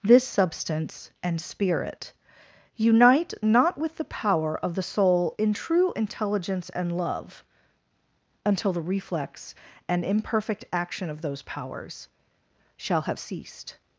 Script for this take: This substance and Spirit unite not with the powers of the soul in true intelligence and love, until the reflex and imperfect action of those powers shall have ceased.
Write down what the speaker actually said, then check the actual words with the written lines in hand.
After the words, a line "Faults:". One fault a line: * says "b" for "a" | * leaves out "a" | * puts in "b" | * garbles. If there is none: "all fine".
This substance and Spirit unite not with the power of the soul in true intelligence and love, until the reflex and imperfect action of those powers shall have ceased.
Faults:
* says "power" for "powers"